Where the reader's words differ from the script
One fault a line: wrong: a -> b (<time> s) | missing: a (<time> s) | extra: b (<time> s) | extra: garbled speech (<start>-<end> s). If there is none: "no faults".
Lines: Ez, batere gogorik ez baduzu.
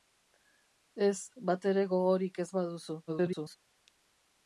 extra: garbled speech (3.1-3.6 s)